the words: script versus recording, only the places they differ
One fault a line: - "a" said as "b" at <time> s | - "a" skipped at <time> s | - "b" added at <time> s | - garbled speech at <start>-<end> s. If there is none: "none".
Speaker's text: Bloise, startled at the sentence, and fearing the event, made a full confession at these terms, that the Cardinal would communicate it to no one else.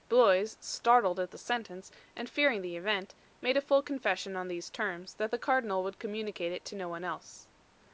- "at" said as "on" at 4.3 s